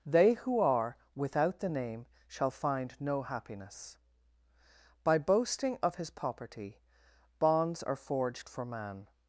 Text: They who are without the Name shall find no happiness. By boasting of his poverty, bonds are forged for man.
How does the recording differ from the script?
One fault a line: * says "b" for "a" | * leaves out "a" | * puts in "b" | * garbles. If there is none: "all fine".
all fine